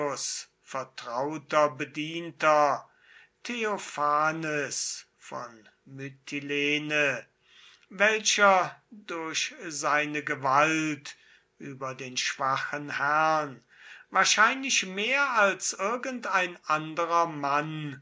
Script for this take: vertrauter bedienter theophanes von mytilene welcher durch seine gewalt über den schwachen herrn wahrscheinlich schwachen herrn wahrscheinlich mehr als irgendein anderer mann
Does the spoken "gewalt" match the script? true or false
true